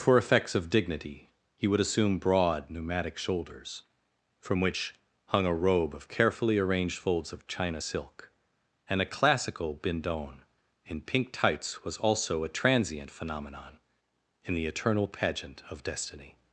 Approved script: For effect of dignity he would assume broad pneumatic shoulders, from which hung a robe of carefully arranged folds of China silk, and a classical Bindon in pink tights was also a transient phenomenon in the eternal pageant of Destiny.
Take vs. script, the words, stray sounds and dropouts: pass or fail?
fail